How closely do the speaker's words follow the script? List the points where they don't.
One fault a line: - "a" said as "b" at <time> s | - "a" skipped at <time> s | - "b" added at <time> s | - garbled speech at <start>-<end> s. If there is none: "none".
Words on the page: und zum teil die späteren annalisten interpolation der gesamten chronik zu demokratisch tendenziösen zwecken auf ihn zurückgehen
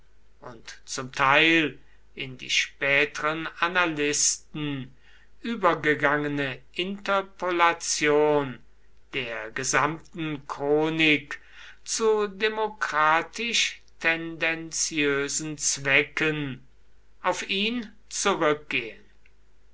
- "in" added at 2.1 s
- "übergegangene" added at 5.4 s